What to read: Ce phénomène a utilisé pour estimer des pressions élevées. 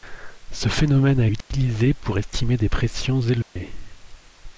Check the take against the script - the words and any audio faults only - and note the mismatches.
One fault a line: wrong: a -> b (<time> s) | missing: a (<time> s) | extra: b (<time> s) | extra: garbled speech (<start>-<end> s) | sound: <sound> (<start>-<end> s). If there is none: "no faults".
sound: dropout (1.4-1.5 s)
sound: dropout (3.4-3.6 s)